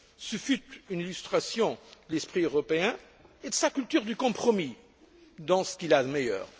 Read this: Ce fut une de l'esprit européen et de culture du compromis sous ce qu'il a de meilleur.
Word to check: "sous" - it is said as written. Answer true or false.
false